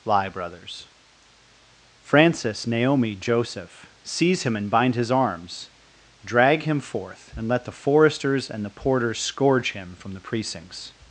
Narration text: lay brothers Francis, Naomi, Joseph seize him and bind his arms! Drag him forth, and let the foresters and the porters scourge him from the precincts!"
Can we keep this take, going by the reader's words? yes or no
no